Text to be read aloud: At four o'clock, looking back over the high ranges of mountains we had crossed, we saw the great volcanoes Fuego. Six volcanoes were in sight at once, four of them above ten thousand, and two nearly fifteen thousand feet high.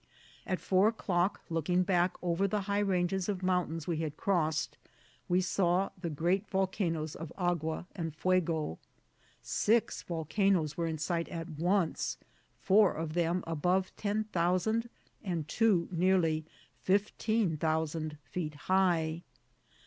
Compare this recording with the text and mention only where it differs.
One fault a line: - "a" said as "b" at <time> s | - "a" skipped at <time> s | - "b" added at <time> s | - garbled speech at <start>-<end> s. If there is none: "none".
- "of Agua and" added at 7.2 s